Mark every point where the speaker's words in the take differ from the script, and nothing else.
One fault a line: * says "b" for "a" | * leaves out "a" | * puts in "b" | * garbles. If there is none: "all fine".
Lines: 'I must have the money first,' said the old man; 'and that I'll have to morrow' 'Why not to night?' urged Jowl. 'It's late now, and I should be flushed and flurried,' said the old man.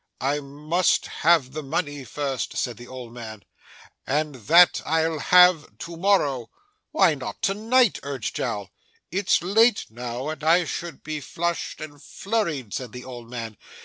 all fine